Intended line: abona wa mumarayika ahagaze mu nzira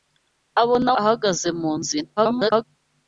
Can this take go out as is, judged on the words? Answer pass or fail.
fail